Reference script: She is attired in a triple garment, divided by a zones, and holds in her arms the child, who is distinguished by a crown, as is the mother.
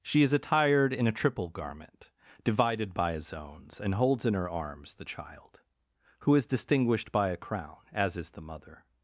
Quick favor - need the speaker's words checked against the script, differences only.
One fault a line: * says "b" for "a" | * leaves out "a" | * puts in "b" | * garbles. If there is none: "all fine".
all fine